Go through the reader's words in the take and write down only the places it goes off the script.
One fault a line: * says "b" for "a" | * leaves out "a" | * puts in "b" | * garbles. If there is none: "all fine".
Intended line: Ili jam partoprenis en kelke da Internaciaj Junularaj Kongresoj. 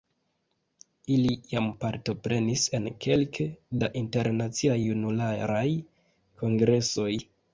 all fine